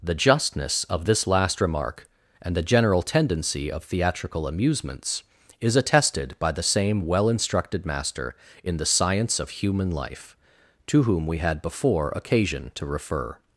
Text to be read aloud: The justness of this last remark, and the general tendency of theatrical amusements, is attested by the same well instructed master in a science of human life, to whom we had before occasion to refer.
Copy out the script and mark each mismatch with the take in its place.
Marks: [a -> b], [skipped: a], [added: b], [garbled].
The justness of this last remark, and the general tendency of theatrical amusements, is attested by the same well instructed master in [a -> the] science of human life, to whom we had before occasion to refer.